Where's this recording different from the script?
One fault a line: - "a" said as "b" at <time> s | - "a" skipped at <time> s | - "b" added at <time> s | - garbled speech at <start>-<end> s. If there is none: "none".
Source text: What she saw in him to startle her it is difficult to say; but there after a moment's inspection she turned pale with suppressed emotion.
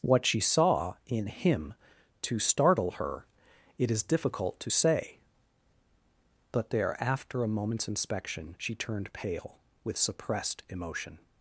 none